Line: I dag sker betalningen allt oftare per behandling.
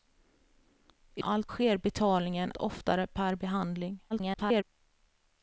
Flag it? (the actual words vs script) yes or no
yes